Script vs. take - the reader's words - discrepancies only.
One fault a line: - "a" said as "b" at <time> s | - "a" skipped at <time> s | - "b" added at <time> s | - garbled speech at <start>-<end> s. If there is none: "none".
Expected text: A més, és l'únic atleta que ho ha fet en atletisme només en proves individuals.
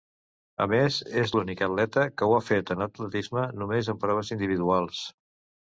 none